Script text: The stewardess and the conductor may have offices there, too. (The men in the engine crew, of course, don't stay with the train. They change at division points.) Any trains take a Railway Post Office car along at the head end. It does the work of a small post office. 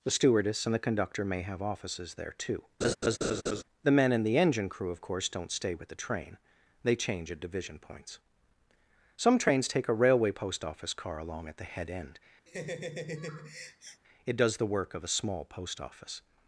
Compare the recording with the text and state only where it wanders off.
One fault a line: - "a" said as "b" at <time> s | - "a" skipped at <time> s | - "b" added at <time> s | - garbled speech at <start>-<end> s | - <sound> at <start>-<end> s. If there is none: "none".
- laugh at 2.8-3.6 s
- "Any" said as "Some" at 9.2 s
- laugh at 12.5-14.0 s